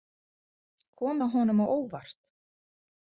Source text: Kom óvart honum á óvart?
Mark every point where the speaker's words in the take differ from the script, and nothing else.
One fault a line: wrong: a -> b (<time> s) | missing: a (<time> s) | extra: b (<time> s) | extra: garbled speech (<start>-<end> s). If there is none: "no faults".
wrong: óvart -> það (1.2 s)